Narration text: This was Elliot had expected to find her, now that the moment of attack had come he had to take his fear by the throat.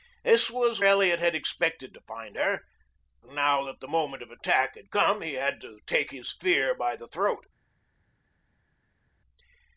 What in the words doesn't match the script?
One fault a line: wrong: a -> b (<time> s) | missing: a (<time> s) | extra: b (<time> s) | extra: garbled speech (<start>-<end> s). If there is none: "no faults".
no faults